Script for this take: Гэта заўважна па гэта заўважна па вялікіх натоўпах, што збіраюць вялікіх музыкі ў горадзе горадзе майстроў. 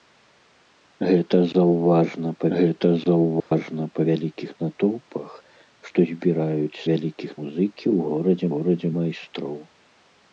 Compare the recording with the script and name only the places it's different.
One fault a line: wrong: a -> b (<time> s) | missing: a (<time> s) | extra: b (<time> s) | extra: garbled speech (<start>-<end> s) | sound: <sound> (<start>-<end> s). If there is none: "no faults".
sound: dropout (3.4-3.5 s)